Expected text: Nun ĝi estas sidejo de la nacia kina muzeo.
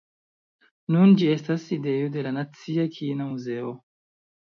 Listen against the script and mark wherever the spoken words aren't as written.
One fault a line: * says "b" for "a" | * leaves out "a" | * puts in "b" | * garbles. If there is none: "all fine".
all fine